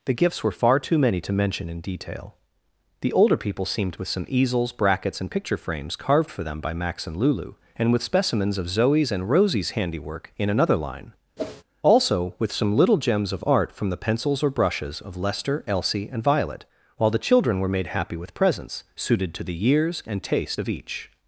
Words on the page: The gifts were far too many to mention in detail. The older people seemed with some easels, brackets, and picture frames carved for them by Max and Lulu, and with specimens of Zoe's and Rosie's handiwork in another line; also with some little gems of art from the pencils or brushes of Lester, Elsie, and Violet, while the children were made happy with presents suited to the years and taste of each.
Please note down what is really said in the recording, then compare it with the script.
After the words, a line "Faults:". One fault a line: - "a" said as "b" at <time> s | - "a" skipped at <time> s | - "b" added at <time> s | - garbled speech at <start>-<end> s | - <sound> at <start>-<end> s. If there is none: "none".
The gifts were far too many to mention in detail. The older people seemed with some easels, brackets, and picture frames carved for them by Max and Lulu, and with specimens of Zoe's and Rosie's handiwork in another line; also with some little gems of art from the pencils or brushes of Lester, Elsie, and Violet, while the children were made happy with presents suited to the years and taste of each.
Faults:
- whoosh at 11.4-11.6 s